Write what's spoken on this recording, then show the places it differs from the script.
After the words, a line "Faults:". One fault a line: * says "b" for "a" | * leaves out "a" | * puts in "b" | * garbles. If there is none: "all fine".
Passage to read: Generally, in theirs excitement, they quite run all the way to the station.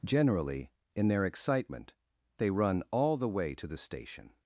Generally, in their excitement, they run all the way to the station.
Faults:
* says "their" for "theirs"
* leaves out "quite"